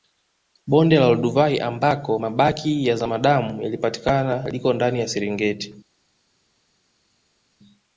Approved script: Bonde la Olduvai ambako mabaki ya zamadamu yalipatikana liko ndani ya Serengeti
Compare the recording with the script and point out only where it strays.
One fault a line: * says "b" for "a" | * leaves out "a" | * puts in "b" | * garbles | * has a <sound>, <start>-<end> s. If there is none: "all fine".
all fine